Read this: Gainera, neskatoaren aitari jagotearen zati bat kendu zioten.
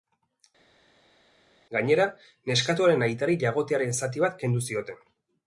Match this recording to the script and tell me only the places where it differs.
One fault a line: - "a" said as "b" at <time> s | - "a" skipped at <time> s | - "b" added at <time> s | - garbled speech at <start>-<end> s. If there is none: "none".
none